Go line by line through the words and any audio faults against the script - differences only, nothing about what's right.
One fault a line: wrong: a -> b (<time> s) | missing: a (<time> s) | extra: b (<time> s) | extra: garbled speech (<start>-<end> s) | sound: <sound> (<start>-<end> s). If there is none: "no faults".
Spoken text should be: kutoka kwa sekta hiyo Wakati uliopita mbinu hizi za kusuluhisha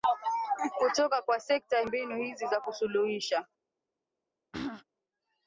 missing: hiyo Wakati uliopita (1.8 s)
sound: throat clearing (4.5-4.8 s)